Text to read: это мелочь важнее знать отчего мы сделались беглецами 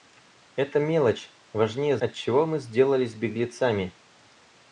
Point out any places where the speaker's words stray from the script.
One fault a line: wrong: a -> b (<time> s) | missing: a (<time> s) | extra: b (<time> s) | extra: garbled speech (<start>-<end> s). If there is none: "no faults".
missing: знать (1.9 s)